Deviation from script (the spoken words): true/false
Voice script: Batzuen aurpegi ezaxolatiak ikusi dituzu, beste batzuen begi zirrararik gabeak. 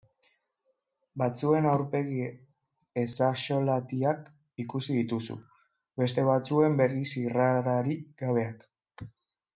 false